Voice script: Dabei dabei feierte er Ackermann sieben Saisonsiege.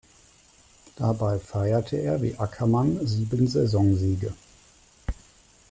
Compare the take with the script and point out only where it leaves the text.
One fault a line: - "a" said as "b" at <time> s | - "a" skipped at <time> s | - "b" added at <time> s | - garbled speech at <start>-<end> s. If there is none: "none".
- "dabei" skipped at 1.4 s
- "wie" added at 2.2 s